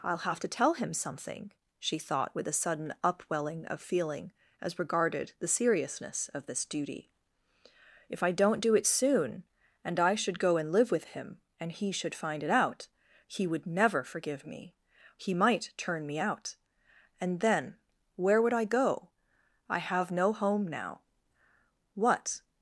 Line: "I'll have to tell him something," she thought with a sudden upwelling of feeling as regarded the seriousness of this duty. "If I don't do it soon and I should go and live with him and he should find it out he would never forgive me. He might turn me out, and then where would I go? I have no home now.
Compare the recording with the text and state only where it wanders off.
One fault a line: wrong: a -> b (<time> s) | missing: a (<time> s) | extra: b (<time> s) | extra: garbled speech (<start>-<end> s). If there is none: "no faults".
extra: What (21.9 s)